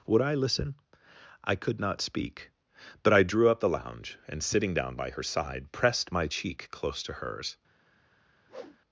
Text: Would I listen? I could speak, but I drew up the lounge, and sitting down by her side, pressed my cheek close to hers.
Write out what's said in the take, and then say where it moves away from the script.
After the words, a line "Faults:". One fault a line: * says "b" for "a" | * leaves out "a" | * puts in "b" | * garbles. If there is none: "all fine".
Would I listen? I could not speak, but I drew up the lounge, and sitting down by her side, pressed my cheek close to hers.
Faults:
* puts in "not"